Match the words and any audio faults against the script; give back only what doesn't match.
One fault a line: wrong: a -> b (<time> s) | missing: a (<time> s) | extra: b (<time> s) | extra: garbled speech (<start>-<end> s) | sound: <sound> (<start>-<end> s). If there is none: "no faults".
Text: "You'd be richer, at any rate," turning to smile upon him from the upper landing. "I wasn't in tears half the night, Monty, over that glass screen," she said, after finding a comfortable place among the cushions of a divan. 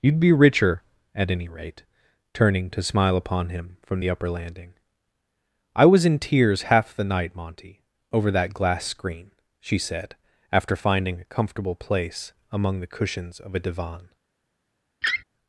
wrong: wasn't -> was (5.9 s)
sound: laugh (15.0-15.2 s)